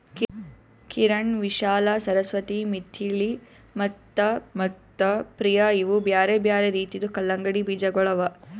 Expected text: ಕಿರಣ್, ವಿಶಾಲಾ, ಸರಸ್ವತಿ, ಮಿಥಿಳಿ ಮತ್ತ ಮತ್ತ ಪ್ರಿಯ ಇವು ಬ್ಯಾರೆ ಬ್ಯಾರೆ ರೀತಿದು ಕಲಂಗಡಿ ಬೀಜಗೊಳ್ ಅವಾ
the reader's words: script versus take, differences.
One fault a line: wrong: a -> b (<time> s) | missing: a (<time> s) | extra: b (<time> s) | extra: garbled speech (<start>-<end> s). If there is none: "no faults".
no faults